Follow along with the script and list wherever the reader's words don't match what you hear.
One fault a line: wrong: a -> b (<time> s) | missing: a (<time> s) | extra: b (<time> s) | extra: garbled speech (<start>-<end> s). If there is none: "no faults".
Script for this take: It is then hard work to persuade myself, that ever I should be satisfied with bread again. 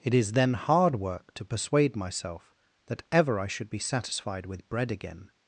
no faults